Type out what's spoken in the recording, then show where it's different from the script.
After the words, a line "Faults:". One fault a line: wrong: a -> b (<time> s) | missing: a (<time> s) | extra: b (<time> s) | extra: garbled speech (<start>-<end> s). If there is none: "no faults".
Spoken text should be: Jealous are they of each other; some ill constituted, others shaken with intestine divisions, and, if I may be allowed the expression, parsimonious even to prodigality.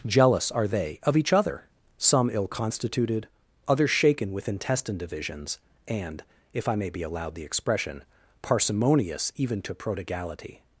Jealous are they of each other; some ill constituted, others shaken with intestine divisions, and, if I may be allowed the expression, parsimonious even to prodigality.
Faults:
no faults